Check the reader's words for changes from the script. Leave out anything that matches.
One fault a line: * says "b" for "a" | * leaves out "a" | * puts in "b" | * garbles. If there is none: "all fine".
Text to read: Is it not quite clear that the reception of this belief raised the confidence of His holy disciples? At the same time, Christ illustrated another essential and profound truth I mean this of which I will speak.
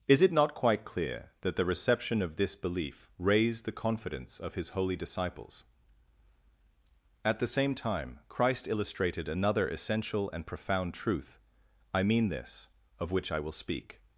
all fine